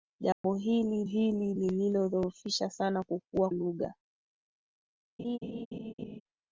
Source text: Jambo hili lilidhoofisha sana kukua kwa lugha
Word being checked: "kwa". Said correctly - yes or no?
no